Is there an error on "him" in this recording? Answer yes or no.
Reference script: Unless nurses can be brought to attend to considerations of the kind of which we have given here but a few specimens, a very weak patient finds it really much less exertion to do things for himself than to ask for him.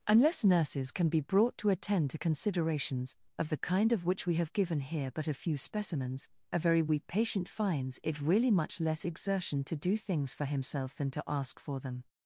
yes